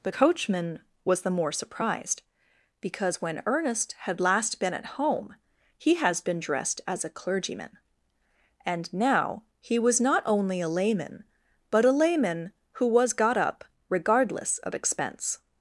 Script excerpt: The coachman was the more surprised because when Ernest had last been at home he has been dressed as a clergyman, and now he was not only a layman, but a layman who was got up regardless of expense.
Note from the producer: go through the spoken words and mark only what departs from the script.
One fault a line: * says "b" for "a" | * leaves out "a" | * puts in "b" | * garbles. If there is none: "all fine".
all fine